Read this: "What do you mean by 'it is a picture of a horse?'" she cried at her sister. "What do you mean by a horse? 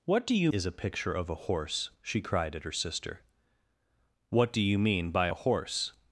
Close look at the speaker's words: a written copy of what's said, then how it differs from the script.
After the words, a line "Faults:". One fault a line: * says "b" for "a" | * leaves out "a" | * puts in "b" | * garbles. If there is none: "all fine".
"What do you is a picture of a horse?'" she cried at her sister. "What do you mean by a horse?
Faults:
* leaves out "mean by it"